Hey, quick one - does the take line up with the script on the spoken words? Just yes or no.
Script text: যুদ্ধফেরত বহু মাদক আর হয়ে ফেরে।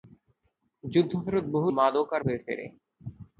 yes